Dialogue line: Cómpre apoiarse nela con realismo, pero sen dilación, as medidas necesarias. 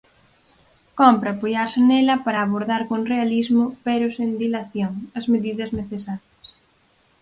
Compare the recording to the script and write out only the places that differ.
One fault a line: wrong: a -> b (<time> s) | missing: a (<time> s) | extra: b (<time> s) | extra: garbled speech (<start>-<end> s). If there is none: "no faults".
extra: para abordar (2.2 s)